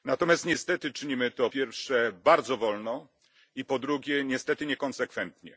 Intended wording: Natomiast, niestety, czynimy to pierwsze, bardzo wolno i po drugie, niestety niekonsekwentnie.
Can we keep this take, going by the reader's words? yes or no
yes